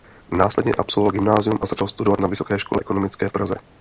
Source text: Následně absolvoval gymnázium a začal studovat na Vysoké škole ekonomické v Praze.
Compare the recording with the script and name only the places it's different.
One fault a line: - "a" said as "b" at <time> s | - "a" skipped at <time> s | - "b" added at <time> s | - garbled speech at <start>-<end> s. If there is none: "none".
none